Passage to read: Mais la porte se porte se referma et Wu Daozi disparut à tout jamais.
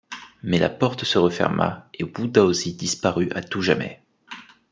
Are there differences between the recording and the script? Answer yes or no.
yes